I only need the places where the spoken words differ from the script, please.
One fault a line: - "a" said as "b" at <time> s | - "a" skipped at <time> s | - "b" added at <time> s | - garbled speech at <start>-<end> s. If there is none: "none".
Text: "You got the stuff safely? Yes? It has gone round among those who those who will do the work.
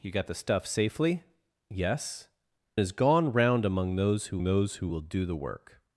none